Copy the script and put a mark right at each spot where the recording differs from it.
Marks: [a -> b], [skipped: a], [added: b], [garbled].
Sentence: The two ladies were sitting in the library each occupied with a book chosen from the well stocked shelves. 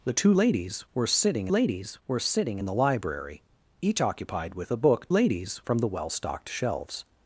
The two ladies were sitting [added: ladies were sitting] in the library each occupied with a book [chosen -> ladies] from the well stocked shelves.